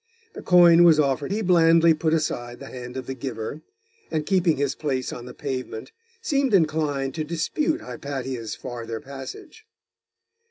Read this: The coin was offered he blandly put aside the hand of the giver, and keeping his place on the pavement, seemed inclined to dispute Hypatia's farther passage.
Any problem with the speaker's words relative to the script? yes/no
no